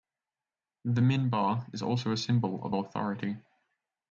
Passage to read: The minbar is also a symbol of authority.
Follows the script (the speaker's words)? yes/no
yes